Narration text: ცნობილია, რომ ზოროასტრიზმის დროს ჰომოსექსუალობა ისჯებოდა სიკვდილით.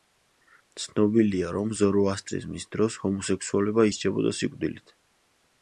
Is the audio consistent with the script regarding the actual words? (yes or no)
yes